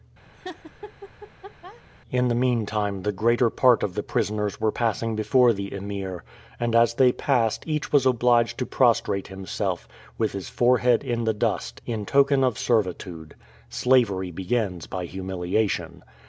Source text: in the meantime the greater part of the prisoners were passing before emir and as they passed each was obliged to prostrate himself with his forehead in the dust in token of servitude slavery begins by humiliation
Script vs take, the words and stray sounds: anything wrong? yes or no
yes